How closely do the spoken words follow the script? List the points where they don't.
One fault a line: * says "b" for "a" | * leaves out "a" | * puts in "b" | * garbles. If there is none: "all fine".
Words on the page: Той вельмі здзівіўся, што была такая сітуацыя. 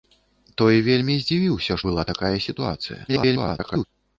* leaves out "што"
* garbles